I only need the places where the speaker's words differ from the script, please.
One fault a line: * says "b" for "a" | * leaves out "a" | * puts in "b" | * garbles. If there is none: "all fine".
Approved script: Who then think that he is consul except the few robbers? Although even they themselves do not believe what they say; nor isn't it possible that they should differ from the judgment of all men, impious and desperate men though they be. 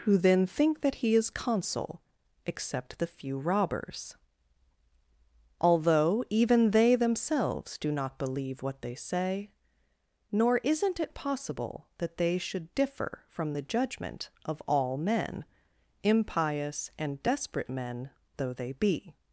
all fine